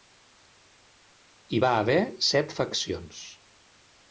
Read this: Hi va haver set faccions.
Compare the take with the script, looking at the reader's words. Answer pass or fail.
pass